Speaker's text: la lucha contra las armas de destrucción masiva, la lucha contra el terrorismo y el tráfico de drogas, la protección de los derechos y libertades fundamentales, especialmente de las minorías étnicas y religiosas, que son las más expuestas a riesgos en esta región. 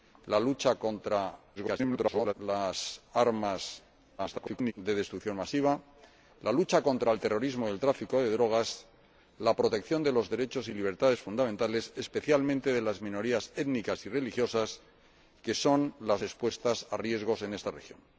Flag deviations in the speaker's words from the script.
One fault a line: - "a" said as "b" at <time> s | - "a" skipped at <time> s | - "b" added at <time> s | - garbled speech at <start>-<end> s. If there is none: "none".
- garbled speech at 1.6-2.3 s
- garbled speech at 4.2-4.7 s
- "más" skipped at 16.2 s